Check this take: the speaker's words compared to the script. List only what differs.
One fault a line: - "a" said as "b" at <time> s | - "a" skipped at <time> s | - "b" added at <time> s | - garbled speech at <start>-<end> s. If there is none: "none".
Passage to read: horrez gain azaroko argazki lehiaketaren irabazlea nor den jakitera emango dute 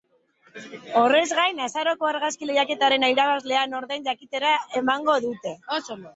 none